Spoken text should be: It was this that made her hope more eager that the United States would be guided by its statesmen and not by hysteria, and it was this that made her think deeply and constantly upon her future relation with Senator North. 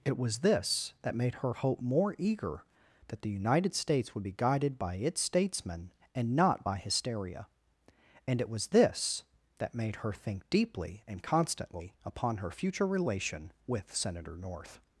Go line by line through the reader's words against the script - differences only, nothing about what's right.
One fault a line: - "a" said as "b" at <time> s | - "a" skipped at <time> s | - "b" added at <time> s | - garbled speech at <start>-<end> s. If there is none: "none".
none